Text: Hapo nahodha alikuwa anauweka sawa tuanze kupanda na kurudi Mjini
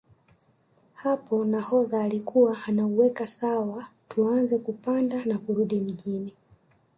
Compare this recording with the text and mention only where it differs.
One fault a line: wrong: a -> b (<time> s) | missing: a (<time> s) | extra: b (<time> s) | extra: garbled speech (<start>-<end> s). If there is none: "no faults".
no faults